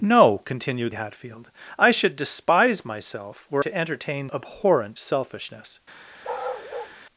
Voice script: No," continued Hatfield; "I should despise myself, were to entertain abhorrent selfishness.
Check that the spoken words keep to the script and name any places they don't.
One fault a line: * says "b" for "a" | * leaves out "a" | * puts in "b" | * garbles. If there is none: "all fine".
all fine